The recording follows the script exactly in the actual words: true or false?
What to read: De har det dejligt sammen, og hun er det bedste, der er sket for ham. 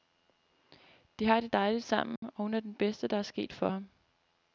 true